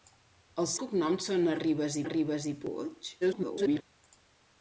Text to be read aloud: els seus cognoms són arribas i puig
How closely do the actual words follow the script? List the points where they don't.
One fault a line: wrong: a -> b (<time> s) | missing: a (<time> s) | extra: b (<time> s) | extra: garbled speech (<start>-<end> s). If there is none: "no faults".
missing: seus (0.7 s)
extra: arribas (2.1 s)
extra: garbled speech (3.2-3.8 s)